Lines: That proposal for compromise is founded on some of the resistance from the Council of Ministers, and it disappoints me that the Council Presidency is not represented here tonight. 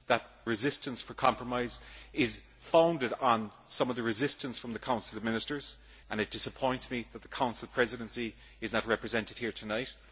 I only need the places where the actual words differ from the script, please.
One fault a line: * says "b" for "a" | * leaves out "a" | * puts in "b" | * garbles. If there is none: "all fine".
* says "resistance" for "proposal"